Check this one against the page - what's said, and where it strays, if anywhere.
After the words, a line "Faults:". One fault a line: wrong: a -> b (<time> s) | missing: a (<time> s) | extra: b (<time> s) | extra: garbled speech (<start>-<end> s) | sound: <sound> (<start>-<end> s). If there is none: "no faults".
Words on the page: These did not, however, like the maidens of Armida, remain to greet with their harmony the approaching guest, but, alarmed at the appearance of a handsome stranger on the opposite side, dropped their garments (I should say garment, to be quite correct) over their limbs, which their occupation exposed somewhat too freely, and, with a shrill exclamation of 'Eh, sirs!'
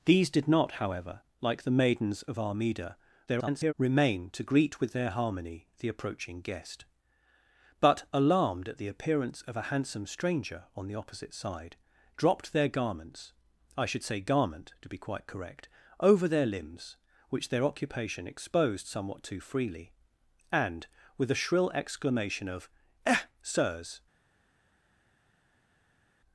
These did not, however, like the maidens of Armida, [garbled] remain to greet with their harmony the approaching guest, but, alarmed at the appearance of a handsome stranger on the opposite side, dropped their garments (I should say garment, to be quite correct) over their limbs, which their occupation exposed somewhat too freely, and, with a shrill exclamation of 'Eh, sirs!'
Faults:
extra: garbled speech (3.3-3.7 s)